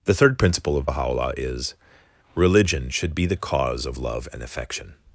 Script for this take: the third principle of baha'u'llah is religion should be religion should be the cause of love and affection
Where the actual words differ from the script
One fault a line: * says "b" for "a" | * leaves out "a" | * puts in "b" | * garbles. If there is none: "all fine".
* leaves out "religion should be"